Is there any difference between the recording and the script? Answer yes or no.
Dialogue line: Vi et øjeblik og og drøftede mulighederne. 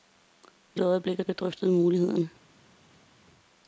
no